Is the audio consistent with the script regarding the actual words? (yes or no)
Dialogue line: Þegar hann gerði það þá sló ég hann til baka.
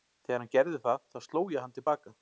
yes